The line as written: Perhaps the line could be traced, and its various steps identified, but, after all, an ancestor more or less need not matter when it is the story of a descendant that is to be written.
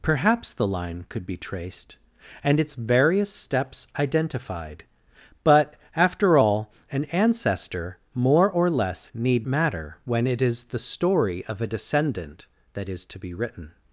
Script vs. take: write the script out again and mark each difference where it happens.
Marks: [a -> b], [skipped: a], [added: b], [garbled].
Perhaps the line could be traced, and its various steps identified, but, after all, an ancestor more or less need [skipped: not] matter when it is the story of a descendant that is to be written.